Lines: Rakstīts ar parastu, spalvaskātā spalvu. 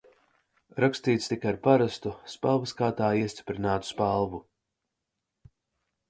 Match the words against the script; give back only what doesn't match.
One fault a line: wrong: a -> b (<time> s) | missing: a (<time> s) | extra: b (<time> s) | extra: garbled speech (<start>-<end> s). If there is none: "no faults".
extra: tika (1.3 s)
extra: iestiprinātu (3.2 s)